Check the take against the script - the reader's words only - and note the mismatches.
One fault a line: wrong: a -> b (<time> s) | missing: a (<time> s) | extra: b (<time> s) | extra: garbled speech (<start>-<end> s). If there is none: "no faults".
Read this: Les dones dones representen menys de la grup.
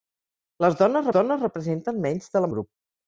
no faults